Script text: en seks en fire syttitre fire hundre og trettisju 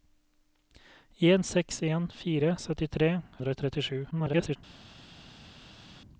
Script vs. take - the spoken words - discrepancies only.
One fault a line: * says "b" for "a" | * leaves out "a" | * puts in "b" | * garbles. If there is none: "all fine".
* leaves out "fire"
* garbles